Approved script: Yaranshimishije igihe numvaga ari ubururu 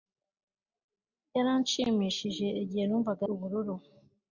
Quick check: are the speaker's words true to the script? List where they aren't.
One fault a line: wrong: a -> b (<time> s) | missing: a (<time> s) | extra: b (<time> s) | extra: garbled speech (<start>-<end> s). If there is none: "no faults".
missing: ari (3.2 s)